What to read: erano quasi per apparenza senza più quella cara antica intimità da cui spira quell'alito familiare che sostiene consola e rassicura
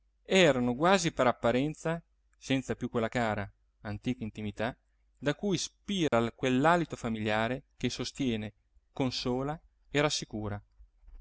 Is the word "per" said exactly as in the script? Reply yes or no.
yes